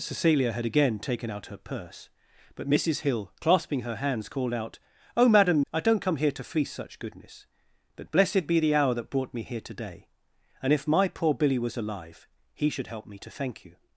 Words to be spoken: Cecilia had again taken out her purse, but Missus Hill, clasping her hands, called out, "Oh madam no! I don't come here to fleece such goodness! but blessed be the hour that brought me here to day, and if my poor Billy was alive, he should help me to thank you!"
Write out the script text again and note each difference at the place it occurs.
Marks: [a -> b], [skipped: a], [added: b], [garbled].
Cecilia had again taken out her purse, but Missus Hill, clasping her hands, called out, "Oh madam [skipped: no!] I don't come here to fleece such goodness! but blessed be the hour that brought me here to day, and if my poor Billy was alive, he should help me to thank you!"